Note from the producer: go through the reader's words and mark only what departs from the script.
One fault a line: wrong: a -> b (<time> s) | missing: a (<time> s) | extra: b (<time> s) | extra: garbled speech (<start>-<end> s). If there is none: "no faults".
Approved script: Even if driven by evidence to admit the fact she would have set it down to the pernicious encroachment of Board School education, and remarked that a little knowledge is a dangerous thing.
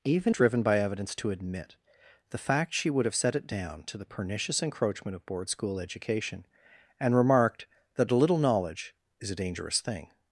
missing: if (0.3 s)